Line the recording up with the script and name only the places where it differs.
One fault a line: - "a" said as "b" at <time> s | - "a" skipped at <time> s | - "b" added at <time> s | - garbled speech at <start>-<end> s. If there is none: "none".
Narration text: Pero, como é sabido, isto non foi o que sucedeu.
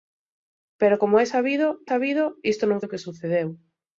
- "sabido" added at 1.9 s
- "foi" skipped at 2.8 s